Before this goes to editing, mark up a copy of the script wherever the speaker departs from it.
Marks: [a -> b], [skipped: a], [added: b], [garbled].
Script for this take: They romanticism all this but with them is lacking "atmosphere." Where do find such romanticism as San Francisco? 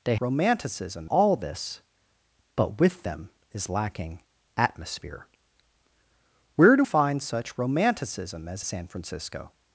They romanticism all this but with them is lacking "atmosphere." Where do find such romanticism as San Francisco?